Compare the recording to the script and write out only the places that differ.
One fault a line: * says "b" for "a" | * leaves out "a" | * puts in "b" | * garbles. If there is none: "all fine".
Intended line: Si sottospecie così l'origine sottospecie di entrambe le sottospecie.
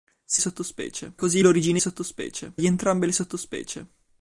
all fine